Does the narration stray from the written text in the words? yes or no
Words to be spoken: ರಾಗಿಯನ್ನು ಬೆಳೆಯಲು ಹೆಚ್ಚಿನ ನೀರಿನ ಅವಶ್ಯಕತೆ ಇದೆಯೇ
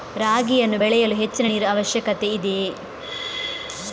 no